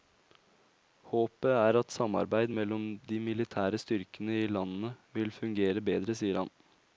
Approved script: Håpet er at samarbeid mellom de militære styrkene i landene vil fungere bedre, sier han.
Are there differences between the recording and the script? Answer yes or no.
no